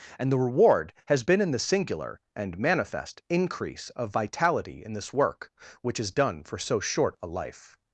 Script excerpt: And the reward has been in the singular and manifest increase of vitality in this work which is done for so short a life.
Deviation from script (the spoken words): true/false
false